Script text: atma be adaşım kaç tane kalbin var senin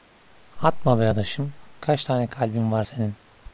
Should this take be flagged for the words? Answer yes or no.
no